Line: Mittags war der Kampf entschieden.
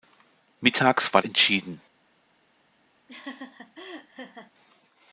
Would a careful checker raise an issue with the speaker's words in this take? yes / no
yes